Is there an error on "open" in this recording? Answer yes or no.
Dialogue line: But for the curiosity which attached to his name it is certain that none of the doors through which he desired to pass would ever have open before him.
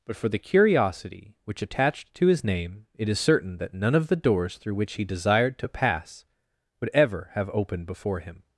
yes